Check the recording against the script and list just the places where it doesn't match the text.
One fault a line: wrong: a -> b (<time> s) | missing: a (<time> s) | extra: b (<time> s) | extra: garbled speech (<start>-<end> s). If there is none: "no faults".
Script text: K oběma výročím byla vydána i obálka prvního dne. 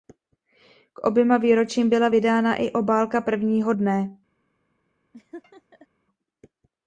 no faults